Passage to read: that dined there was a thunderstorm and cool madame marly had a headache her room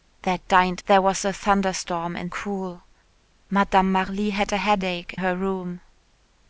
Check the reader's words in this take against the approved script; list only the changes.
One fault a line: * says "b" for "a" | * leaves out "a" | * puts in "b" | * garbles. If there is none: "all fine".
all fine